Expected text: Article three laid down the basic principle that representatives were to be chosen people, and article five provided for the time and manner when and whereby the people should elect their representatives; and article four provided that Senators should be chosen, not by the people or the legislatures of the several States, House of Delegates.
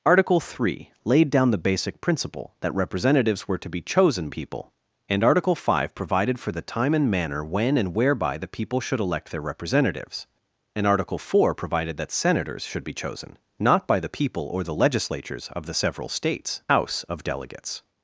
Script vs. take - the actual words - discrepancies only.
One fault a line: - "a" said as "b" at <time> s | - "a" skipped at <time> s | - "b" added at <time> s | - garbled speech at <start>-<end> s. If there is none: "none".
none